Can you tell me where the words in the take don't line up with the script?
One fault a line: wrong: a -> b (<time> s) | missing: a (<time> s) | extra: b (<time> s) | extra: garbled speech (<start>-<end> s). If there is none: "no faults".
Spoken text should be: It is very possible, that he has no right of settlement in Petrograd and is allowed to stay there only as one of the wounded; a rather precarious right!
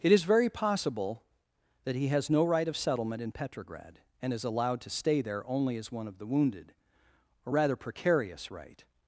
no faults